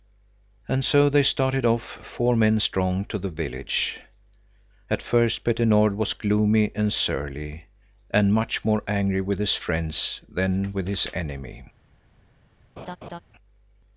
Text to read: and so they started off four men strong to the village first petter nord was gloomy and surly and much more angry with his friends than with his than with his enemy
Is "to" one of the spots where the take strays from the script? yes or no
no